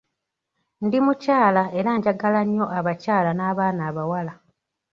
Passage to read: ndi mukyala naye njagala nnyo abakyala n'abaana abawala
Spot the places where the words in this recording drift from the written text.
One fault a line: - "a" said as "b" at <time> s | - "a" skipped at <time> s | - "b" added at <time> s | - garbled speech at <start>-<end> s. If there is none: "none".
- "naye" said as "era" at 1.8 s